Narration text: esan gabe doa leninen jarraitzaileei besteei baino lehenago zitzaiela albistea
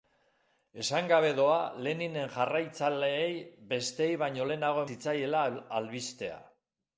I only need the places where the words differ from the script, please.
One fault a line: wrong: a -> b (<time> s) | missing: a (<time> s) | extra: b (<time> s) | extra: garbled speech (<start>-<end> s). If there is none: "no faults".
no faults